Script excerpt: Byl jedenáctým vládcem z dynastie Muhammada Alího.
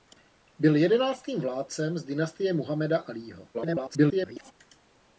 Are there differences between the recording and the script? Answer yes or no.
yes